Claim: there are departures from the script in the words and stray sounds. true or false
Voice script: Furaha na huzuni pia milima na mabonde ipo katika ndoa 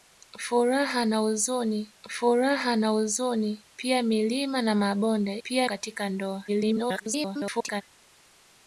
true